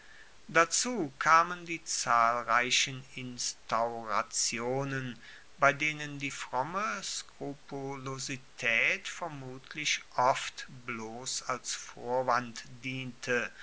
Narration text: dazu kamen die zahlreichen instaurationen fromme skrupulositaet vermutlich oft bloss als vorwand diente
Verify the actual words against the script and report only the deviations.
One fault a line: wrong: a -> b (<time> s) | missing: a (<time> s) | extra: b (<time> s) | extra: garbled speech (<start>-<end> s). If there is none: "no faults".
extra: bei denen die (5.6 s)